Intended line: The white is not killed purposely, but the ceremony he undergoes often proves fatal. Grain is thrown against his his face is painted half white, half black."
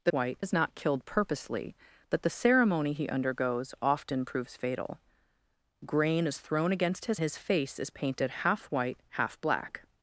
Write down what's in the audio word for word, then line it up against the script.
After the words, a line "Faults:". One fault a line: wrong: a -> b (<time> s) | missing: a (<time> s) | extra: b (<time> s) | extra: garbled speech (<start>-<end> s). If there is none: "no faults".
The white is not killed purposely, but the ceremony he undergoes often proves fatal. Grain is thrown against his his face is painted half white, half black."
Faults:
no faults